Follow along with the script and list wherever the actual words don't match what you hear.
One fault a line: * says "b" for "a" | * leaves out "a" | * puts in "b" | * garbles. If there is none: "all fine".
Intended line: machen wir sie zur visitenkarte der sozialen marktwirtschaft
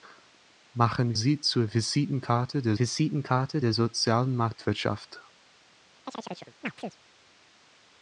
* leaves out "wir"
* puts in "visitenkarte der"